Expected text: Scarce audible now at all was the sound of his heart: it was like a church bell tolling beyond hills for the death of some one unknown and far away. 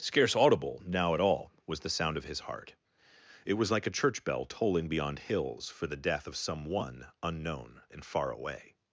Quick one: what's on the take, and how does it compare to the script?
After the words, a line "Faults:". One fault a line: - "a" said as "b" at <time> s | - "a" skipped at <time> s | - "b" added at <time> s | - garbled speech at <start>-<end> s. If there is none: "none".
Scarce audible now at all was the sound of his heart: it was like a church bell tolling beyond hills for the death of some one unknown and far away.
Faults:
none